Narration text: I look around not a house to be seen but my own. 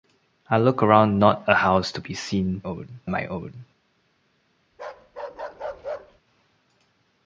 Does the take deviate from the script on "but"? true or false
true